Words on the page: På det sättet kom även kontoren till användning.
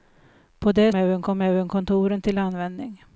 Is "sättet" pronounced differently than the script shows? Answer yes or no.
yes